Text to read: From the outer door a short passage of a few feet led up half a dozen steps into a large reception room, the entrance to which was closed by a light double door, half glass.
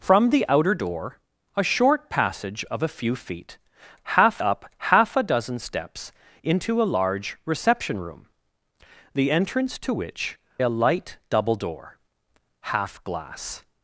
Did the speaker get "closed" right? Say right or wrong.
wrong